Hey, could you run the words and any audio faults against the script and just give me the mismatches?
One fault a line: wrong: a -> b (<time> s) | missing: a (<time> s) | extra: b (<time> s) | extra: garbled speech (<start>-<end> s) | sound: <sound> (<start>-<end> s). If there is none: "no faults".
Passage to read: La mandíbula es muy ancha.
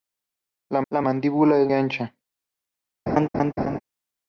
extra: la (0.9 s)
missing: muy (1.7 s)
sound: laugh (3.1-3.8 s)